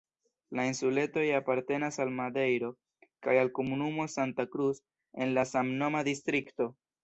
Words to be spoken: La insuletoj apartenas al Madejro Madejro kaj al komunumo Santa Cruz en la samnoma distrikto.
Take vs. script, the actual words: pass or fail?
fail